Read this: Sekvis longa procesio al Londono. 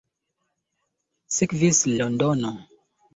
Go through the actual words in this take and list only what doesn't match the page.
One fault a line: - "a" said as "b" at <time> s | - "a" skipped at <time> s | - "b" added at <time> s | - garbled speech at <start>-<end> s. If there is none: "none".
- "longa procesio al" skipped at 1.8 s